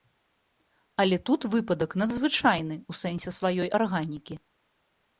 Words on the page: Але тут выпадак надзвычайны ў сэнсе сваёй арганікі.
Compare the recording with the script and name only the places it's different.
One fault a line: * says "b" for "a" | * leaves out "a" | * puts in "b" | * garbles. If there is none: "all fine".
all fine